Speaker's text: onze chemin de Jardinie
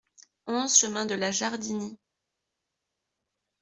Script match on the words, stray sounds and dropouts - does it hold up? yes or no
no